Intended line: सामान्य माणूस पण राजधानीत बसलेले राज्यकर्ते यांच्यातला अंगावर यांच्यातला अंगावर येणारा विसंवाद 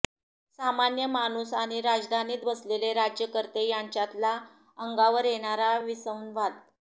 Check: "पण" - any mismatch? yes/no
yes